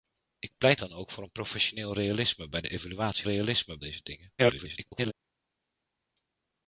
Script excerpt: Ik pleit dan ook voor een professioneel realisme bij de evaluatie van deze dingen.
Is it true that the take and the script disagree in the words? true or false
true